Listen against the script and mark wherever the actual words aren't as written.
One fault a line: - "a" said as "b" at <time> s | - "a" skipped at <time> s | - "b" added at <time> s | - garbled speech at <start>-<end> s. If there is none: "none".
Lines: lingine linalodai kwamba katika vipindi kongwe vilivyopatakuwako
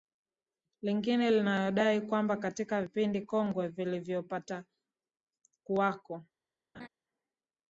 none